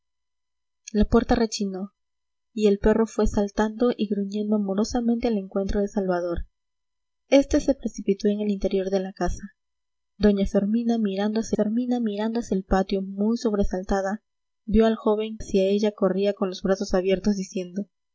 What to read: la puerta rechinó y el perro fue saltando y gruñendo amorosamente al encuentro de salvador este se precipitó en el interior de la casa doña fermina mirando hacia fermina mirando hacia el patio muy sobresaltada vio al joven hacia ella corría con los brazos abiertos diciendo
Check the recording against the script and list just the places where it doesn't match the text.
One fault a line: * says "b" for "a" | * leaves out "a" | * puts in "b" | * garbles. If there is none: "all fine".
all fine